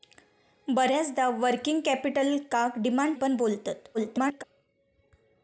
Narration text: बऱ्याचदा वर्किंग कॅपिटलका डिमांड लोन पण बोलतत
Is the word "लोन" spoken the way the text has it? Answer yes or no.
no